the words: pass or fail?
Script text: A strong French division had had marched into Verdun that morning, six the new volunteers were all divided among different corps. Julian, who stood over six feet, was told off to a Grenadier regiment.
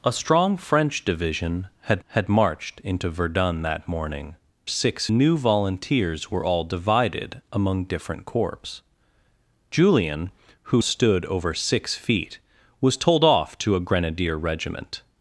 pass